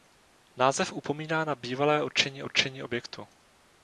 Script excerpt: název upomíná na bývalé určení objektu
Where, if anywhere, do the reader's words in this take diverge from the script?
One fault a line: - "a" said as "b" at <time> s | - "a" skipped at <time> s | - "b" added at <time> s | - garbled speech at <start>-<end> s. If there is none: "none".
- "určení" added at 2.4 s